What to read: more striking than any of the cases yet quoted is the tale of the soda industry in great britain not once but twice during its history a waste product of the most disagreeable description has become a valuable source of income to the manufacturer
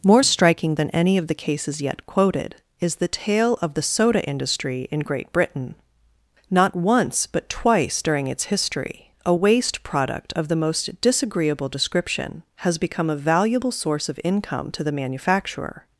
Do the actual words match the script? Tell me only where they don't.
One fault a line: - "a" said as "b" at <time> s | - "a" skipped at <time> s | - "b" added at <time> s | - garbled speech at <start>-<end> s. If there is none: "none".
none